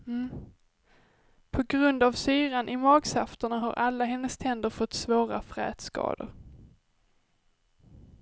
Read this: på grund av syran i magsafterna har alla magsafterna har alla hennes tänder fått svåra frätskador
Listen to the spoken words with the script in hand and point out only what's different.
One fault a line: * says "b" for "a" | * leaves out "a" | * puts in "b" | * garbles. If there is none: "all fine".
* leaves out "magsafterna har alla"